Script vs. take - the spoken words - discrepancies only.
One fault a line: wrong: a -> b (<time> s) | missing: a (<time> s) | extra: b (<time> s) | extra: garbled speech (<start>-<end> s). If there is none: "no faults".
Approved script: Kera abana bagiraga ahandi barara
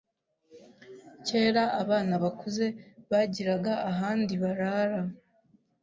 extra: bakuze (2.2 s)